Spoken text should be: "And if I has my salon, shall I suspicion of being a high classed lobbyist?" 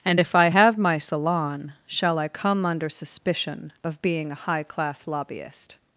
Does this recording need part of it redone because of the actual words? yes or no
yes